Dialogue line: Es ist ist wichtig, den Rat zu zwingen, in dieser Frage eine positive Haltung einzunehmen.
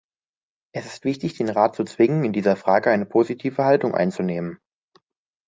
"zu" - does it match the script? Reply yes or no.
yes